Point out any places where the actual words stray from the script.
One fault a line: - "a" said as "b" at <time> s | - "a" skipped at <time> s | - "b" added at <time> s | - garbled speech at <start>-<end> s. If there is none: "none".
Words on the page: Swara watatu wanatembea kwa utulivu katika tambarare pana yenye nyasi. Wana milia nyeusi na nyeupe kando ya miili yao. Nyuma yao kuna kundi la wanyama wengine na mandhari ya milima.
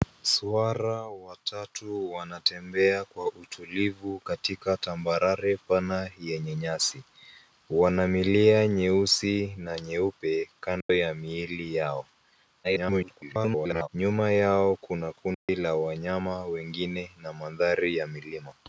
- garbled speech at 12.6-13.9 s